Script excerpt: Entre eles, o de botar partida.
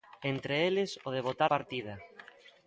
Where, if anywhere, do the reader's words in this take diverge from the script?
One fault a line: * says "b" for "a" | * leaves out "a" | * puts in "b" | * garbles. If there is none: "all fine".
all fine